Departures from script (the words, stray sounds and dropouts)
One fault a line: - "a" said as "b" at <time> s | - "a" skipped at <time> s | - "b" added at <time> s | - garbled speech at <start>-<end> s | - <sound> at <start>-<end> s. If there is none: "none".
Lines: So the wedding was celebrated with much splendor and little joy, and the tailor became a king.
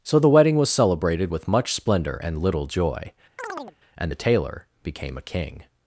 - chirp at 3.4-3.8 s